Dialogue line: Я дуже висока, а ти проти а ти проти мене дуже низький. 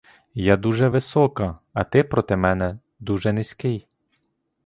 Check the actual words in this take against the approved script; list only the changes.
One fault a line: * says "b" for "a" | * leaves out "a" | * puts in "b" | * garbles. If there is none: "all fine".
* leaves out "а ти проти"